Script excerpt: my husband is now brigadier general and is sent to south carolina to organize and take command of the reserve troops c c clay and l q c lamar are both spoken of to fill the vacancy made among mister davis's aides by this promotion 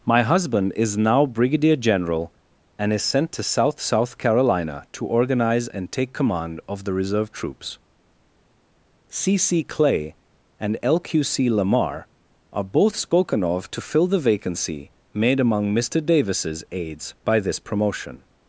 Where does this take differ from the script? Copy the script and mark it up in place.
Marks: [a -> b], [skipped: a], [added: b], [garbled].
my husband is now brigadier general and is sent to south [added: south] carolina to organize and take command of the reserve troops c c clay and l q c lamar are both spoken of to fill the vacancy made among mister davis's aides by this promotion